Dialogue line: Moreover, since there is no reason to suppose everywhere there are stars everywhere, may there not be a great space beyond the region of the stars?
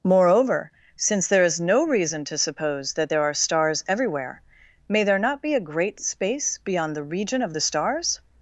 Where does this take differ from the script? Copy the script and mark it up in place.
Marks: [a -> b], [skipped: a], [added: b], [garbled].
Moreover, since there is no reason to suppose [everywhere -> that] there are stars everywhere, may there not be a great space beyond the region of the stars?